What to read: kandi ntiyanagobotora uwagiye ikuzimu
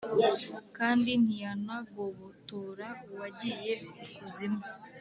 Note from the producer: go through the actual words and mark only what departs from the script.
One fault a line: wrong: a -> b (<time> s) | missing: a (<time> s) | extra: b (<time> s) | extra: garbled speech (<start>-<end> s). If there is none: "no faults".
no faults